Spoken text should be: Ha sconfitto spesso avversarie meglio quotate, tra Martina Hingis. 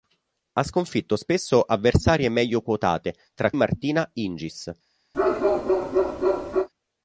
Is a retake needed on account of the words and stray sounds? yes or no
yes